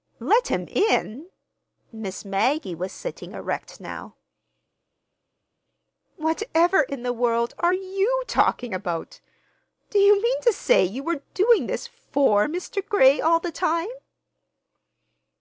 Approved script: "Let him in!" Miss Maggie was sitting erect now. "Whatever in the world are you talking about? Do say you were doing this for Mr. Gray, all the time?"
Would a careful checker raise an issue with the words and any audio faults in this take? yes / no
yes